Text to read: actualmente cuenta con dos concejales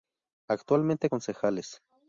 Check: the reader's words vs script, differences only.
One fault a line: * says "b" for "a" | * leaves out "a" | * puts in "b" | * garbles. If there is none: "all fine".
* leaves out "cuenta con dos"